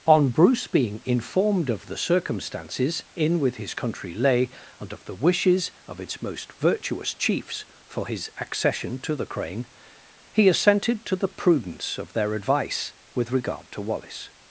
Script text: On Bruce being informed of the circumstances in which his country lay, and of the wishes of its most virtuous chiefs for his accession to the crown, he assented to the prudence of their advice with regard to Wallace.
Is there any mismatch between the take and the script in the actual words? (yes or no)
yes